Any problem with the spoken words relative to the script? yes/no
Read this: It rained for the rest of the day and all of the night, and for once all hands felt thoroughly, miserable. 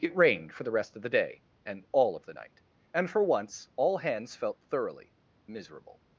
no